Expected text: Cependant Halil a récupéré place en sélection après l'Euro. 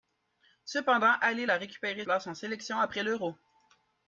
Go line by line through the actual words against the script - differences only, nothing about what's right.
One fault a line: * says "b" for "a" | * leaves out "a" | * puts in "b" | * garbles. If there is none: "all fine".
all fine